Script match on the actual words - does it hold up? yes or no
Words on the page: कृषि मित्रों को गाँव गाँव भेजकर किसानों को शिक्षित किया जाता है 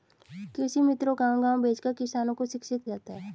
no